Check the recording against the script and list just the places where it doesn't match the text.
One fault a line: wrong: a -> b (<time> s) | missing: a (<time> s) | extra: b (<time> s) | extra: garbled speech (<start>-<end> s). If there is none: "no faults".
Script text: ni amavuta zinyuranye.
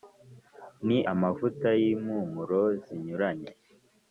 extra: y'impumuro (1.8 s)